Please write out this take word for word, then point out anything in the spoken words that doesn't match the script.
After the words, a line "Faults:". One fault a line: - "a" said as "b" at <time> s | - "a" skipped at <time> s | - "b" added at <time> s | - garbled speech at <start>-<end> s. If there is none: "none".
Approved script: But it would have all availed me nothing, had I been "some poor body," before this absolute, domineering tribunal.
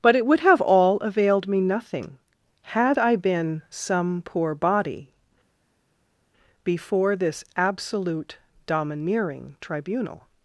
But it would have all availed me nothing, had I been "some poor body," before this absolute, domineering tribunal.
Faults:
none